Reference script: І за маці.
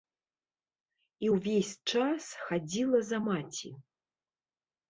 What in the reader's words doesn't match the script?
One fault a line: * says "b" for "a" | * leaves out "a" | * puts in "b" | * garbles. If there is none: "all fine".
* puts in "ўвесь час хадзіла"